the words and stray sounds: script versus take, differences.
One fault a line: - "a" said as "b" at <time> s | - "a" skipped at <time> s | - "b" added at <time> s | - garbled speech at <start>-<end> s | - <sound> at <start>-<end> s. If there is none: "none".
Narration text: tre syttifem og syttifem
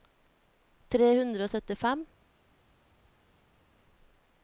- "syttifem" said as "hundre" at 1.2 s